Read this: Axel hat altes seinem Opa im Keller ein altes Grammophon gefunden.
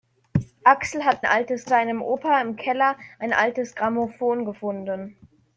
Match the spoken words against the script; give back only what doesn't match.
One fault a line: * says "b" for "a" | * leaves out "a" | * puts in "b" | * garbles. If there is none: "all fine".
all fine